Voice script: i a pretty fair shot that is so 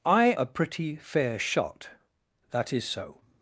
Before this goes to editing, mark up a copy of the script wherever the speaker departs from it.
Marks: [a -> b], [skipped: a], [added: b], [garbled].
i a pretty fair shot that is so